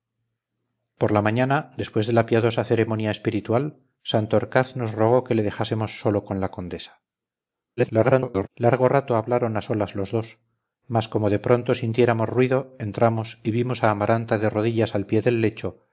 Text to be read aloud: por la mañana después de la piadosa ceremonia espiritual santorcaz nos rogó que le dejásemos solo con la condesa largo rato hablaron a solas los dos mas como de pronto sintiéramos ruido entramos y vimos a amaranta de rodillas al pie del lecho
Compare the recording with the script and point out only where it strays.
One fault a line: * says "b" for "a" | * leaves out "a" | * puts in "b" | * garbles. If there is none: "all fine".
* garbles